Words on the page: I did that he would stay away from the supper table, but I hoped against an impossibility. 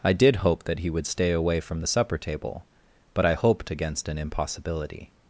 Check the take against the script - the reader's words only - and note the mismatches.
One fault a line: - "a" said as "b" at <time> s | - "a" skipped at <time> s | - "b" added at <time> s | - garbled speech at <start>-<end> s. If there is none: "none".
- "hope" added at 0.4 s